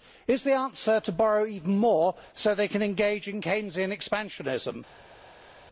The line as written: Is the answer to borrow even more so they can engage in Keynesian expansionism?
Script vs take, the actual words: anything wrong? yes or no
no